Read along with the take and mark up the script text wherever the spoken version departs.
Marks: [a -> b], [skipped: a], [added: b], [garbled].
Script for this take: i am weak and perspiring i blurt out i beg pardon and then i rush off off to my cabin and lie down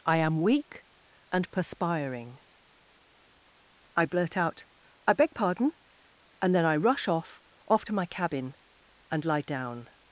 i am weak and perspiring i blurt out i beg pardon and then i rush off off to my cabin and lie down